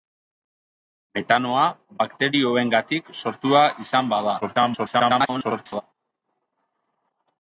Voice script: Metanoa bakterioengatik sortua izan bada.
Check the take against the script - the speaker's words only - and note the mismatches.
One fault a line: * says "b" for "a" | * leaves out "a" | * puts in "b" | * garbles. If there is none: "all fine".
* garbles